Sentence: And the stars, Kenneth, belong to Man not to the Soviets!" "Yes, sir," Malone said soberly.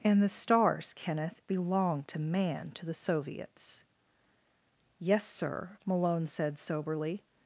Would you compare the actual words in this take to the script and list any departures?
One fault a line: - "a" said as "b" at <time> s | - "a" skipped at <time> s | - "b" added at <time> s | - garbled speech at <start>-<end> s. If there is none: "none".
- "not" skipped at 2.7 s